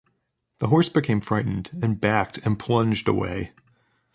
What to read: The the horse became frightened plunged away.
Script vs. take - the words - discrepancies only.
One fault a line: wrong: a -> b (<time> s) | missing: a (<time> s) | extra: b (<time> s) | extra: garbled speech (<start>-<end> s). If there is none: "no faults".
missing: the (0.7 s)
extra: and backed and (1.8 s)